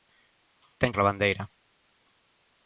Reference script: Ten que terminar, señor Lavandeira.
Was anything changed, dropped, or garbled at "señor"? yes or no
yes